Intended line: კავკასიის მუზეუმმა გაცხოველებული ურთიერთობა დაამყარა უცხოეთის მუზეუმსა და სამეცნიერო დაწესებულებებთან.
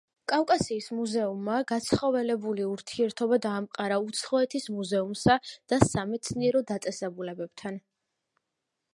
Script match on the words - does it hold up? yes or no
yes